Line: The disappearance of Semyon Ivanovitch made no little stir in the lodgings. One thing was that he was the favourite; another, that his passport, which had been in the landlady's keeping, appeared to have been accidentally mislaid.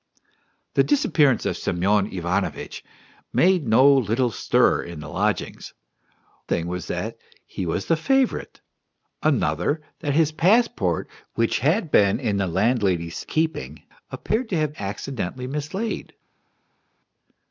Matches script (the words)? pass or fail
fail